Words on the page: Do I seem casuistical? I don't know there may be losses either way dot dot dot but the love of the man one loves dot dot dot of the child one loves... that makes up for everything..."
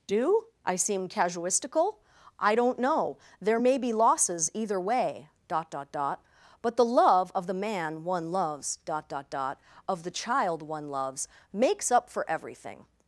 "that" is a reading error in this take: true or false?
true